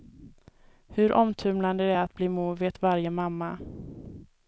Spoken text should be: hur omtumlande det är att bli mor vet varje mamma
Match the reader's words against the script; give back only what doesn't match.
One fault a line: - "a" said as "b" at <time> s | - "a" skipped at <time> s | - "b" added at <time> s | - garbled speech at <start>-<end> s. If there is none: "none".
none